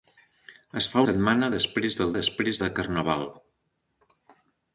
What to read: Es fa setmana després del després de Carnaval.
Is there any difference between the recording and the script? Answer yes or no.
no